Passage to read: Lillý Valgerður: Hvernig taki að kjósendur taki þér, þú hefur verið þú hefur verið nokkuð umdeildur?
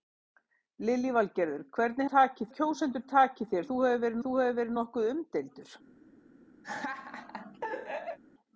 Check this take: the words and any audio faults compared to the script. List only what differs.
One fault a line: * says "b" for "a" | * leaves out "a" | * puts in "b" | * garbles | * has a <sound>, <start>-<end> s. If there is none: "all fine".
* has a laugh, 6.6-8.2 s